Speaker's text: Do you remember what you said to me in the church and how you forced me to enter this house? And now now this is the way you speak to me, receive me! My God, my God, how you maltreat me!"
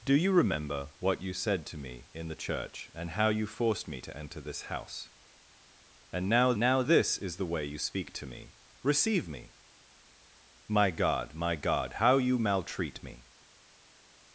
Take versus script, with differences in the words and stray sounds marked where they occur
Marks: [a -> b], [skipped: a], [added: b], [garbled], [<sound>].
Do you remember what you said to me in the church and how you forced me to enter this house? And now now this is the way you speak to me, receive me! My God, my God, how you maltreat me!"